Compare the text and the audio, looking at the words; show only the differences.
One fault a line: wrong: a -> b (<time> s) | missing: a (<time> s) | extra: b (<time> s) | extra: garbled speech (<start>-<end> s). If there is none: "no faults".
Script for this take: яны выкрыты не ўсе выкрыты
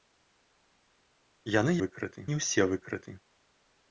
no faults